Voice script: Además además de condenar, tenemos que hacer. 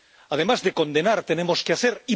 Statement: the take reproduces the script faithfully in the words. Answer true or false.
false